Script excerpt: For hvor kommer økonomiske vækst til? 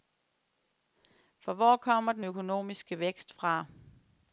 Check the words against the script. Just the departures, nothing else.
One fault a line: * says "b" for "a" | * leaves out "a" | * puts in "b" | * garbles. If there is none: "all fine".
* puts in "den"
* says "fra" for "til"